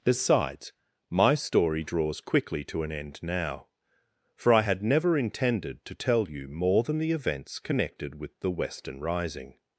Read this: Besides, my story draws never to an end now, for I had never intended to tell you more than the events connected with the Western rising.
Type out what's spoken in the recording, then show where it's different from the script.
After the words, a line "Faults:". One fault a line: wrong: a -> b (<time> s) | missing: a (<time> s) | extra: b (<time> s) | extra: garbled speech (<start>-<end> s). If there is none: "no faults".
Besides, my story draws quickly to an end now, for I had never intended to tell you more than the events connected with the Western rising.
Faults:
wrong: never -> quickly (2.2 s)